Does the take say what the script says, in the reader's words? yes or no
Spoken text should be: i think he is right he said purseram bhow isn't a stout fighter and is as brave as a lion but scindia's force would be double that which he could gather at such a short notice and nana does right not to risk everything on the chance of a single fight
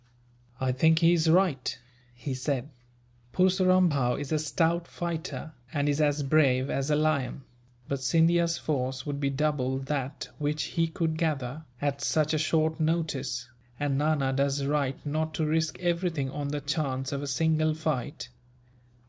no